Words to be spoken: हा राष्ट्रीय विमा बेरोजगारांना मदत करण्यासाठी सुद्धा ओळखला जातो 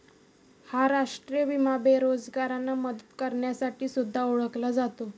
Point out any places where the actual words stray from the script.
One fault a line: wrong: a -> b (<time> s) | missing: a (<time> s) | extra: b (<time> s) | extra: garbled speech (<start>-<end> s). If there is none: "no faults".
no faults